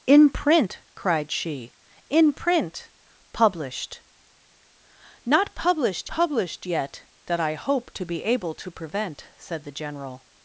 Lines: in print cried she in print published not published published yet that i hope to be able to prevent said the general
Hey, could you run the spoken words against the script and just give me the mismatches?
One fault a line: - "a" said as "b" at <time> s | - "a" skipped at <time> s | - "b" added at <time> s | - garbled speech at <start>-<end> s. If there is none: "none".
none